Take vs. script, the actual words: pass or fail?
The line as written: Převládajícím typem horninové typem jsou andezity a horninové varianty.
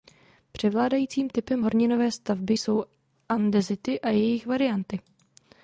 fail